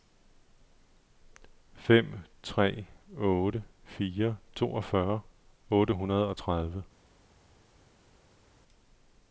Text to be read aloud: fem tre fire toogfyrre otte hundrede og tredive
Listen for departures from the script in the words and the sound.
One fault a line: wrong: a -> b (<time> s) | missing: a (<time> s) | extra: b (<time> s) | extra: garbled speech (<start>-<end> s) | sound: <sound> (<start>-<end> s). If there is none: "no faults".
extra: otte (3.2 s)